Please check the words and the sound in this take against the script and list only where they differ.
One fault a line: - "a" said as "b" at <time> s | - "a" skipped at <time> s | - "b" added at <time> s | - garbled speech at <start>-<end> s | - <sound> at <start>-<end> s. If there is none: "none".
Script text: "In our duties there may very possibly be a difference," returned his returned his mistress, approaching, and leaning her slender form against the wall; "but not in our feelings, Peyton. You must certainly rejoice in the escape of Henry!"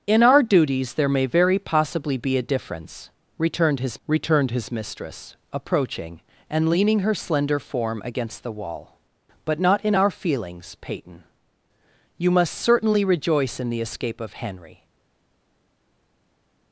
none